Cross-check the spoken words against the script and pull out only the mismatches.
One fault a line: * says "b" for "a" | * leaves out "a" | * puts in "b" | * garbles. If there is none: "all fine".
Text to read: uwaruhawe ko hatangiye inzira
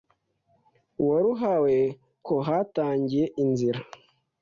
all fine